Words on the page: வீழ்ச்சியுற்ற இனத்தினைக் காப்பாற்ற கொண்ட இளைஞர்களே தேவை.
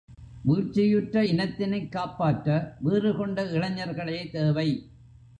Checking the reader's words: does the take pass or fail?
fail